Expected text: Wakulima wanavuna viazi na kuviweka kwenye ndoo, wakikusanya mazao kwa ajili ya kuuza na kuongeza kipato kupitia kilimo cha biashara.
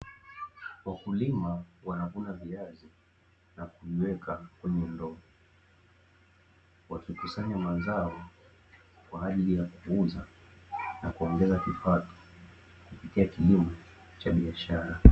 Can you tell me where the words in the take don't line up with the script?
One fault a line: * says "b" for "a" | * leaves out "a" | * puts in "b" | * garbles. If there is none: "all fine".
all fine